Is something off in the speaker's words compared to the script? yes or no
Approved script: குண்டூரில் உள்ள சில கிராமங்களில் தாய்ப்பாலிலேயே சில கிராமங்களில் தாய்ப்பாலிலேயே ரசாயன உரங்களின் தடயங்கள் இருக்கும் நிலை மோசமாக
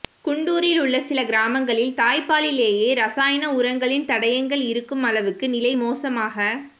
yes